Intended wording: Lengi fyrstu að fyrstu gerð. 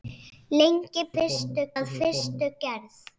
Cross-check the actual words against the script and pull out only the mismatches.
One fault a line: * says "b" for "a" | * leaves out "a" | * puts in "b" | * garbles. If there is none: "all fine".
all fine